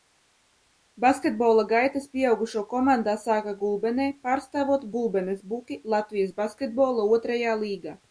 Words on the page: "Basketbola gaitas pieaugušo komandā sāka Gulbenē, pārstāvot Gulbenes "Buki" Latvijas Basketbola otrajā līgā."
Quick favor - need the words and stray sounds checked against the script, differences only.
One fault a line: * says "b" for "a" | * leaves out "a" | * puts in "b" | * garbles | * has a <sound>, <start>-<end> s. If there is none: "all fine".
all fine